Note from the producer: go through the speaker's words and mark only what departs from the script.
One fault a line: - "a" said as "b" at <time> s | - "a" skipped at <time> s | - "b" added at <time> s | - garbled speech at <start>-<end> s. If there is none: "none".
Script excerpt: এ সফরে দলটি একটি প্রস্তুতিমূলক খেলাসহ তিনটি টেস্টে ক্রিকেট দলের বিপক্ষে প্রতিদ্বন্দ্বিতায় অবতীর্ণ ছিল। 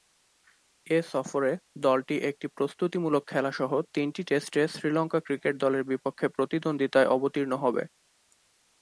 - "শ্রীলঙ্কা" added at 4.7 s
- "ছিল" said as "হবে" at 7.6 s